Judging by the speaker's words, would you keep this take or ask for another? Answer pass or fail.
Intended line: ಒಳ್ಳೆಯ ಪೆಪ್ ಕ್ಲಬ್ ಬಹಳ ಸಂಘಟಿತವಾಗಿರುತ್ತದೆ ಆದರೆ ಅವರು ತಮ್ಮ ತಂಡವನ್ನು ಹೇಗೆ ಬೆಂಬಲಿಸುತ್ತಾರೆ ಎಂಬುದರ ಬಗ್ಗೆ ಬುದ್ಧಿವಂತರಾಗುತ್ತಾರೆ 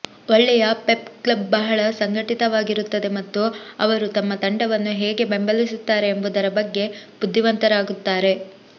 fail